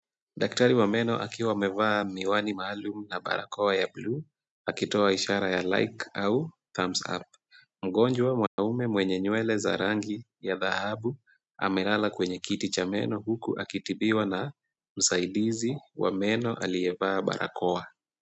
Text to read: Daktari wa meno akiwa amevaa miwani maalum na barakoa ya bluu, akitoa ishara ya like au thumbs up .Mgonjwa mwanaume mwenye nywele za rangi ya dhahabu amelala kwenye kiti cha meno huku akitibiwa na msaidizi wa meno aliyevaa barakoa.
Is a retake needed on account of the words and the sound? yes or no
yes